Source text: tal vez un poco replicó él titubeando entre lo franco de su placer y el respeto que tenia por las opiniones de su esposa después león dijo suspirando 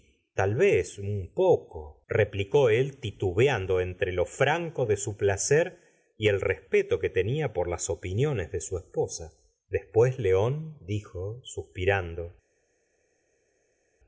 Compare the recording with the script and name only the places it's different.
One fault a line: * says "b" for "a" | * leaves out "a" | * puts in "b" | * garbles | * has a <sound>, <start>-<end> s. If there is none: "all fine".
all fine